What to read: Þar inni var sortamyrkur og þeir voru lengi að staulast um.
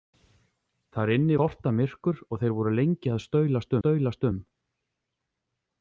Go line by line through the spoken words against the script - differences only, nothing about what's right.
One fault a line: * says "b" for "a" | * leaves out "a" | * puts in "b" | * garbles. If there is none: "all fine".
* leaves out "var"
* puts in "staulast"